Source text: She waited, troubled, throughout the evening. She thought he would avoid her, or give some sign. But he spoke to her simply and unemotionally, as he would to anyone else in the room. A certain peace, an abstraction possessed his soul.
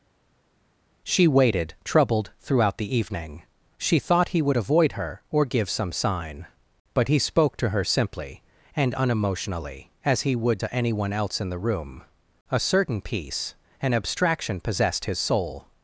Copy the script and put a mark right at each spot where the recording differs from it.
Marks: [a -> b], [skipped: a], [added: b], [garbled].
She waited, troubled, throughout the evening. She thought he would avoid her, or give some sign. But he spoke to her simply and unemotionally, as he would to anyone else in the room. A certain peace, an abstraction possessed his soul.